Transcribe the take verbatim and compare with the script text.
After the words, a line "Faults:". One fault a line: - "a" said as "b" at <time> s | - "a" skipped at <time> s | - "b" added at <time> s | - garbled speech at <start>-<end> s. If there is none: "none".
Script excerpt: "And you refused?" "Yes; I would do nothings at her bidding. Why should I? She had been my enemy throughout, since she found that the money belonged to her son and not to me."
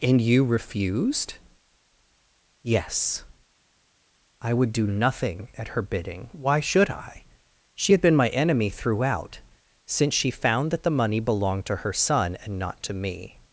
"And you refused?" "Yes; I would do nothing at her bidding. Why should I? She had been my enemy throughout, since she found that the money belonged to her son and not to me."
Faults:
- "nothings" said as "nothing" at 4.9 s